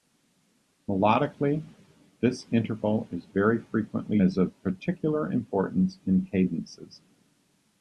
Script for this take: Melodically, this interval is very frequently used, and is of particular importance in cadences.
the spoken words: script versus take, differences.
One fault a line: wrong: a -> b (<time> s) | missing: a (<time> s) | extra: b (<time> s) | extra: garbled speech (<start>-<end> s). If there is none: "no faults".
missing: used and (4.2 s)